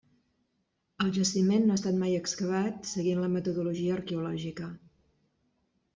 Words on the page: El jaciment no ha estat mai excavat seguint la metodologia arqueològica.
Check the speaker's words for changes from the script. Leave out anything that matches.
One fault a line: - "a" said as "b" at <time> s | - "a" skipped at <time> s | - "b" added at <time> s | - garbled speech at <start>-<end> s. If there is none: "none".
none